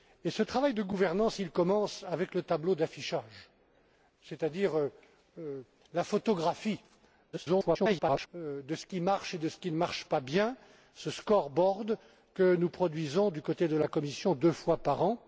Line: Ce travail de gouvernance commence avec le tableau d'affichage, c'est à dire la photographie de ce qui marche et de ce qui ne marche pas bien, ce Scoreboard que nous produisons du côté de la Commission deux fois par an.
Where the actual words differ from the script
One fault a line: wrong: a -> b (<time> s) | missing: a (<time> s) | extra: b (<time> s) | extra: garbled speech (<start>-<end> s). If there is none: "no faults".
extra: garbled speech (7.3-8.3 s)